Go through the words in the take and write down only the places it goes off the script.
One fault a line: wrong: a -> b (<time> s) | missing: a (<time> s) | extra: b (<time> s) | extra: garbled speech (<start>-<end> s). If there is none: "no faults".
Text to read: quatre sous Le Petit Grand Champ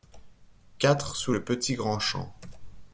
no faults